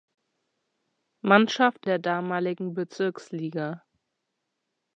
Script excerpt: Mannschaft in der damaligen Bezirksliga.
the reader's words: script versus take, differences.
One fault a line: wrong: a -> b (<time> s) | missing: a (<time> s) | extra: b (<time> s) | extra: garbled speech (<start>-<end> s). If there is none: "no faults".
missing: in (1.9 s)